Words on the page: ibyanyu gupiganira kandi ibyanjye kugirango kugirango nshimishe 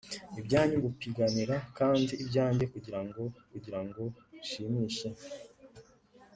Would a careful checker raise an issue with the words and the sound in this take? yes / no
no